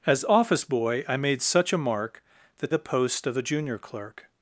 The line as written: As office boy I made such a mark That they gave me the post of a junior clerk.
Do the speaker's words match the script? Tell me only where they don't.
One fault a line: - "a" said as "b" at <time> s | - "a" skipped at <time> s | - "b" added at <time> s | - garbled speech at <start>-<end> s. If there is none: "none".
- "they gave me" skipped at 2.7 s